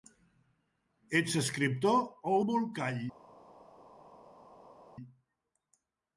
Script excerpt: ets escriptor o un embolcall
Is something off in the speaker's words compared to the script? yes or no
yes